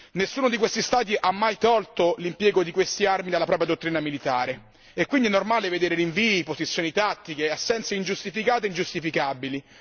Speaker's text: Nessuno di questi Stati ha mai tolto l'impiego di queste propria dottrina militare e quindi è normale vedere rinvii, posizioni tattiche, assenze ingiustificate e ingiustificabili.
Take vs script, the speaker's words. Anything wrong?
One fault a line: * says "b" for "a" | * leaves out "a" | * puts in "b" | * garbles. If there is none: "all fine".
* puts in "armi dalla"